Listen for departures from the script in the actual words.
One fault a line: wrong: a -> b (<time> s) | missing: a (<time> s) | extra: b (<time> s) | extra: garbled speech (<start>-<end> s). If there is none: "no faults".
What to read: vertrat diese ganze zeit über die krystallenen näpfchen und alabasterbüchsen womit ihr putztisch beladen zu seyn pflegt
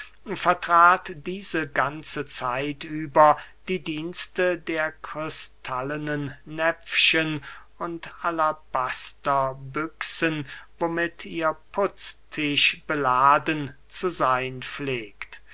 extra: dienste der (3.8 s)